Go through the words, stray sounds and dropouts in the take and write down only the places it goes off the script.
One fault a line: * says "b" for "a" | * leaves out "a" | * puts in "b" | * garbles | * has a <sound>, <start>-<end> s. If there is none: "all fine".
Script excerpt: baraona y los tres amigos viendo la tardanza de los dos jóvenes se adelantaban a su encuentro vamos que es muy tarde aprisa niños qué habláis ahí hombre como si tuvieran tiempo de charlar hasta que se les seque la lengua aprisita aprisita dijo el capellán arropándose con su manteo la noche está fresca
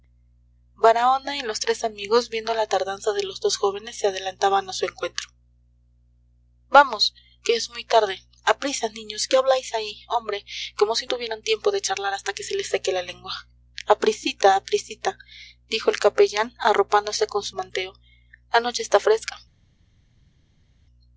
all fine